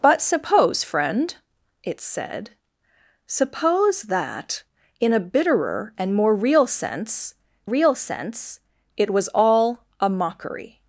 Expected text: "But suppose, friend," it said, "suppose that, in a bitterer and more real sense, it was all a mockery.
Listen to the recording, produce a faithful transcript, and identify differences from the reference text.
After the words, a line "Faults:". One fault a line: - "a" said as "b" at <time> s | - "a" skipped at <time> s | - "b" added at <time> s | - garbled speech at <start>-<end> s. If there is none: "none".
"But suppose, friend," it said, "suppose that, in a bitterer and more real sense real sense, it was all a mockery.
Faults:
- "real sense" added at 7.6 s